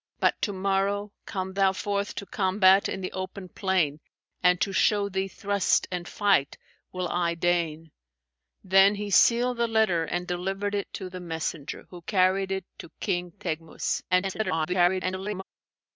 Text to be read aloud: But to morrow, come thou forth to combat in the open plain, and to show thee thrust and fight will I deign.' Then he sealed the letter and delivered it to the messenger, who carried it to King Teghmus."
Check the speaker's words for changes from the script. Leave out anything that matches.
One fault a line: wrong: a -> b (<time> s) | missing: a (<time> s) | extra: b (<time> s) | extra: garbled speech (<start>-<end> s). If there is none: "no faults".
extra: garbled speech (14.1-15.4 s)